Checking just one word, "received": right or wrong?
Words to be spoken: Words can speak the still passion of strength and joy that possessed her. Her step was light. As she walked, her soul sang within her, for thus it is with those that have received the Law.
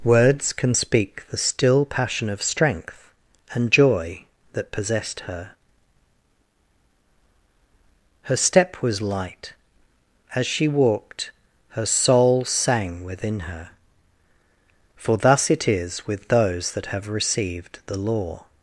right